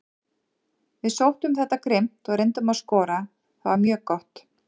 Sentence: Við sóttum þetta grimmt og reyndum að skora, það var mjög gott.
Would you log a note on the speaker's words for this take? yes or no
no